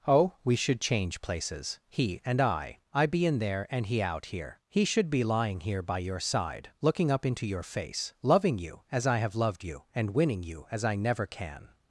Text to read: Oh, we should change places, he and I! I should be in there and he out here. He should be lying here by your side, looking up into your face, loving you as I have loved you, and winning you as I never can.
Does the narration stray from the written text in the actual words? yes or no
yes